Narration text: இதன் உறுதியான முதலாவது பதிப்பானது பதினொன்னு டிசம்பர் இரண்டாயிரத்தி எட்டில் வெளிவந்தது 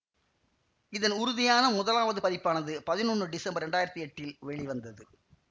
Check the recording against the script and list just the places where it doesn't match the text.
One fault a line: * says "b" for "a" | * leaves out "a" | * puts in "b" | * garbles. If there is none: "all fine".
all fine